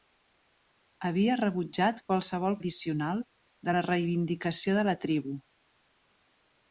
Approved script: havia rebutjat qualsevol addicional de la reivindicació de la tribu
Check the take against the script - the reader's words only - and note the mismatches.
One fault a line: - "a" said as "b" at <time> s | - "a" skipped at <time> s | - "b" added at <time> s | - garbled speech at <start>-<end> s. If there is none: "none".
none